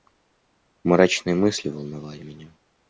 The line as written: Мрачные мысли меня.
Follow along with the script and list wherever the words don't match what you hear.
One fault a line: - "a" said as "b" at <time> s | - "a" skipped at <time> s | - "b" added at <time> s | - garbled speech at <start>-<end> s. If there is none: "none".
- "волновали" added at 1.7 s